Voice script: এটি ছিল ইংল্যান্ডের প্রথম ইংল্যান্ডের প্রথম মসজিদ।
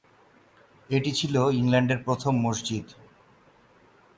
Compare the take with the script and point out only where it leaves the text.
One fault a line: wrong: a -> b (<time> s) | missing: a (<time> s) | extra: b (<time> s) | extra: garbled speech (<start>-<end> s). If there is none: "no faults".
missing: ইংল্যান্ডের প্রথম (2.3 s)